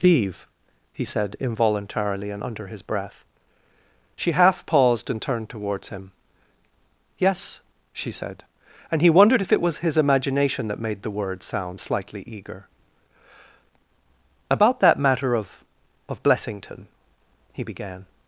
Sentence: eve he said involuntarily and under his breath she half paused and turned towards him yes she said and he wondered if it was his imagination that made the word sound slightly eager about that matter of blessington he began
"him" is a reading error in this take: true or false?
false